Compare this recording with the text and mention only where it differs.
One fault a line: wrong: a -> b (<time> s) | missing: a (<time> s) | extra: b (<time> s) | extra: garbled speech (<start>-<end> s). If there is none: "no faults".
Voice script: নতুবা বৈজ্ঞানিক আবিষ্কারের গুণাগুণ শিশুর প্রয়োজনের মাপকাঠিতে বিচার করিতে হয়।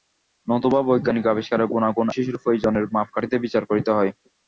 no faults